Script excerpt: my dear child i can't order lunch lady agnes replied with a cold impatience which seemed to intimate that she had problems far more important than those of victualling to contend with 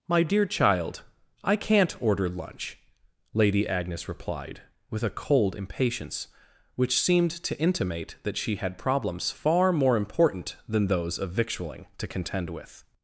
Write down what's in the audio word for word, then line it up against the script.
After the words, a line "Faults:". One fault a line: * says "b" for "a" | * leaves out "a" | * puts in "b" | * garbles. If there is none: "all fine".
my dear child i can't order lunch lady agnes replied with a cold impatience which seemed to intimate that she had problems far more important than those of victualling to contend with
Faults:
all fine